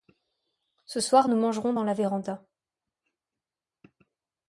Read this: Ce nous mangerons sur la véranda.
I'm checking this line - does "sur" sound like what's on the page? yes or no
no